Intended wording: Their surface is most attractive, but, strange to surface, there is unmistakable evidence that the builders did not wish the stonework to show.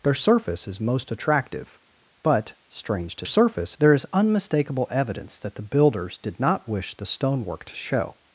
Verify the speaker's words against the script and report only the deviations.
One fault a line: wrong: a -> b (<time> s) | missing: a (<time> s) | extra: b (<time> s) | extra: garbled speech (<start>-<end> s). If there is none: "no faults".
no faults